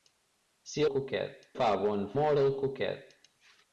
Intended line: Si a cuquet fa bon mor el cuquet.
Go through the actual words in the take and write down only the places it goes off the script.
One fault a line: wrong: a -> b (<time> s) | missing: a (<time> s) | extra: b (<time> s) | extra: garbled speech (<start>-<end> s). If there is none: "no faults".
no faults